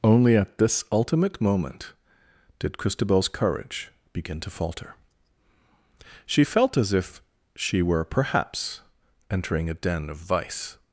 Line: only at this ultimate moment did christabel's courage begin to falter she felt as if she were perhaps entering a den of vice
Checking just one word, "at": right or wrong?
right